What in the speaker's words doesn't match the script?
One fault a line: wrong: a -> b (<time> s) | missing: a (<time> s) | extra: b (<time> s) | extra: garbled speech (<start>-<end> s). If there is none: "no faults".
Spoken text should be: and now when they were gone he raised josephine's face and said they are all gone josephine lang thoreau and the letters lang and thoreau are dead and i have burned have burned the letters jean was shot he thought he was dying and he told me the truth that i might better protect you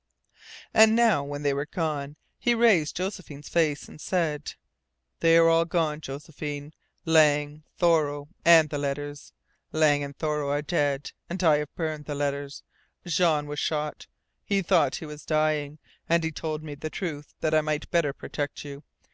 missing: have burned (12.1 s)